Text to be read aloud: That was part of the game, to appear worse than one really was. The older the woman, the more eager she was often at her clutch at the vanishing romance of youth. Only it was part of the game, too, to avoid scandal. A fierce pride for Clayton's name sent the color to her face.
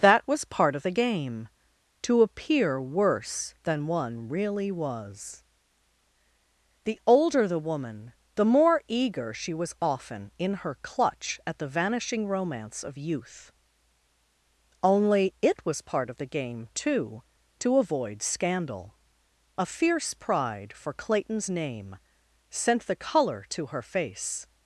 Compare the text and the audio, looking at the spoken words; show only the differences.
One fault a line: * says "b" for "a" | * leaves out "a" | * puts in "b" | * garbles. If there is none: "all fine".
* says "in" for "at"